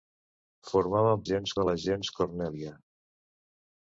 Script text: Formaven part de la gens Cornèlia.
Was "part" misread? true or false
true